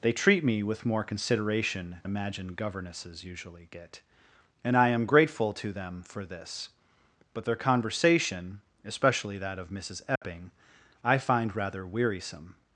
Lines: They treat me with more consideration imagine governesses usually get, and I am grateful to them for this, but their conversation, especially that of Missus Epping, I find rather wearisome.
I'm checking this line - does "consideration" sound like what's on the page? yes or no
yes